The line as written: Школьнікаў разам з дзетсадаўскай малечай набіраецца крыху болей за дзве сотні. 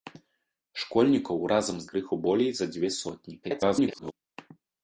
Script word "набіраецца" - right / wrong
wrong